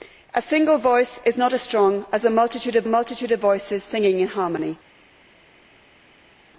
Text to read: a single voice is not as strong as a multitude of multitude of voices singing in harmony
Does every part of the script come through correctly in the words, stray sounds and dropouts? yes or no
yes